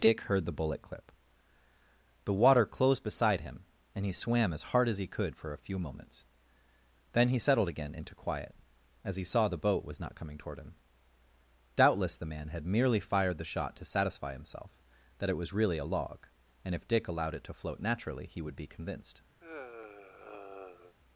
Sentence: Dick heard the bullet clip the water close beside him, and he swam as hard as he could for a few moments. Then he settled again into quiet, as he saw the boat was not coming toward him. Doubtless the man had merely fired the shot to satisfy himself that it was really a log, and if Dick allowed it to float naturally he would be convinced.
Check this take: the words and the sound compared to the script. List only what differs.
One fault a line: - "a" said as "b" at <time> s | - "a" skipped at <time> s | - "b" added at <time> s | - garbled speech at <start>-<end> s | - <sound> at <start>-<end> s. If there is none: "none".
- "close" said as "closed" at 2.6 s
- sigh at 19.4-20.9 s